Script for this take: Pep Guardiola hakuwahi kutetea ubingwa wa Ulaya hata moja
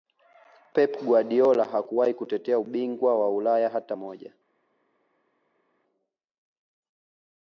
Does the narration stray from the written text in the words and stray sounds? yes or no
no